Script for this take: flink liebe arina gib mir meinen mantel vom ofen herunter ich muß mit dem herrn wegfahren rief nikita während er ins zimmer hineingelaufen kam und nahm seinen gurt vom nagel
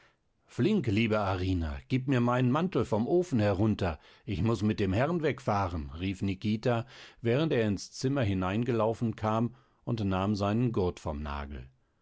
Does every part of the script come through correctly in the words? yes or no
yes